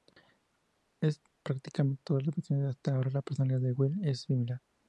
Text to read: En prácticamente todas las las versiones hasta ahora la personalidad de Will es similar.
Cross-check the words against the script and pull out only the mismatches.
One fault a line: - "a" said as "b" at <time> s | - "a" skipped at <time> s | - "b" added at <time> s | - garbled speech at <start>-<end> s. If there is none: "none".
- "las" skipped at 2.4 s